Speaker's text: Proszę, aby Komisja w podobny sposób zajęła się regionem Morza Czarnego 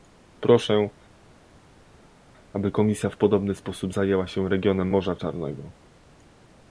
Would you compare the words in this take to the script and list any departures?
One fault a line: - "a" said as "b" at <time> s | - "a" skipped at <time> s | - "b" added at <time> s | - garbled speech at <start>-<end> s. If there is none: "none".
none